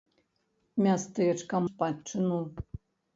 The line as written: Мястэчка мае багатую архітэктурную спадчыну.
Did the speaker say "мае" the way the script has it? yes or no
no